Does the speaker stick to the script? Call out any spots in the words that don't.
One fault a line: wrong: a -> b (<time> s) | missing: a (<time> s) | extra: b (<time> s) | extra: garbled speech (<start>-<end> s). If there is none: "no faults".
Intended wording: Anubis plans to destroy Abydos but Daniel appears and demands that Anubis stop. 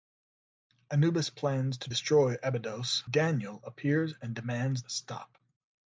missing: but (3.0 s)
missing: that Anubis (4.8 s)